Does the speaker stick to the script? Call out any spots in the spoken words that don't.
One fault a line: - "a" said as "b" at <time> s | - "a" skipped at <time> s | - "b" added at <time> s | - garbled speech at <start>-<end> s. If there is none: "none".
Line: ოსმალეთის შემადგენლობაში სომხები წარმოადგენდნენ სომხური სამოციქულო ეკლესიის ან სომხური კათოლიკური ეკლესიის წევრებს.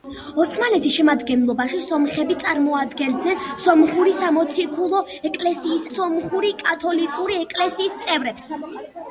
- "ან" skipped at 5.9 s